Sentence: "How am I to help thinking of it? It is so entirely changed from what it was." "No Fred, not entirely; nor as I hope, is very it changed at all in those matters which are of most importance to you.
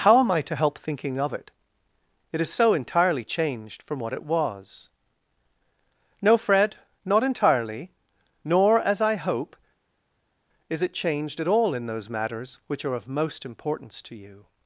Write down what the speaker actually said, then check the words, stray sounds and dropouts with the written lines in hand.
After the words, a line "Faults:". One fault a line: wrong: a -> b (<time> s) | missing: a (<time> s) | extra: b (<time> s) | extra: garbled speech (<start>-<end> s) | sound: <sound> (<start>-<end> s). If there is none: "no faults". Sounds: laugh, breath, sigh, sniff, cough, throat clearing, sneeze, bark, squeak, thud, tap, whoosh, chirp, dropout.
"How am I to help thinking of it? It is so entirely changed from what it was." "No Fred, not entirely; nor as I hope, is it changed at all in those matters which are of most importance to you.
Faults:
missing: very (10.8 s)